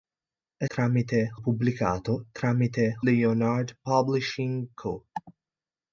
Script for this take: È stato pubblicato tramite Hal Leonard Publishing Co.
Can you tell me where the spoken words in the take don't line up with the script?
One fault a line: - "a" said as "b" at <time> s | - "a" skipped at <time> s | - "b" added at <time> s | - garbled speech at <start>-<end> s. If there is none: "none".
- "stato" said as "tramite" at 0.7 s
- "Hal" skipped at 3.0 s